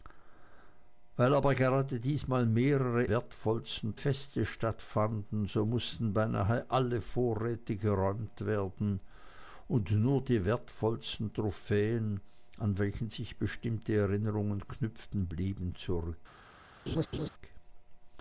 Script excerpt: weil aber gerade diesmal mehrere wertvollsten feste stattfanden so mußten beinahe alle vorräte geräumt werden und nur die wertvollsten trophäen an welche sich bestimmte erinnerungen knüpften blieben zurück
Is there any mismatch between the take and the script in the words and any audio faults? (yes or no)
yes